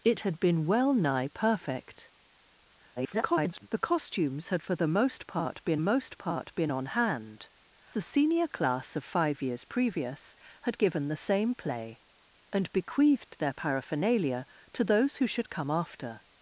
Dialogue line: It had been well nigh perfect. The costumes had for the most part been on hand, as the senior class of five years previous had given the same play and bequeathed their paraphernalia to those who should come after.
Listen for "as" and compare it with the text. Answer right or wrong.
wrong